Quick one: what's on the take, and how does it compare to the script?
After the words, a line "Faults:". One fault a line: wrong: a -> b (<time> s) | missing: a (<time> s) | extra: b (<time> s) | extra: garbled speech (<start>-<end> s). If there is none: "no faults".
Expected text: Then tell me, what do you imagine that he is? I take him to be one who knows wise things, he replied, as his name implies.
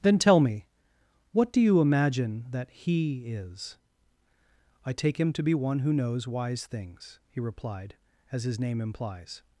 Then tell me, what do you imagine that he is? I take him to be one who knows wise things, he replied, as his name implies.
Faults:
no faults